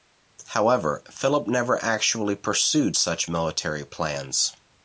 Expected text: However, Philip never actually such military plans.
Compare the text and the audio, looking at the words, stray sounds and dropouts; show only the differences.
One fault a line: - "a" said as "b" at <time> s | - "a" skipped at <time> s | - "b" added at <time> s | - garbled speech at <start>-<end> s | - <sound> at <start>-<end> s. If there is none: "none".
- "pursued" added at 2.4 s